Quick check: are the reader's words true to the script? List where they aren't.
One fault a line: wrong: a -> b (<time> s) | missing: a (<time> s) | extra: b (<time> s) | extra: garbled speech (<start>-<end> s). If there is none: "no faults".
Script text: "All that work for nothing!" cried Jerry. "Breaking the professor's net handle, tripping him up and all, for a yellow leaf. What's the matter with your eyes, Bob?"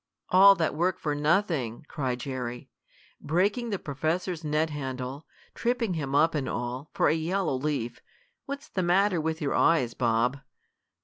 no faults